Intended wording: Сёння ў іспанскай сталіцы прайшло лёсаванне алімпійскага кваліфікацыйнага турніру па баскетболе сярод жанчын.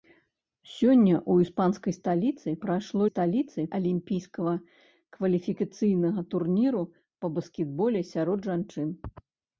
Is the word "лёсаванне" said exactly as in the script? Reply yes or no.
no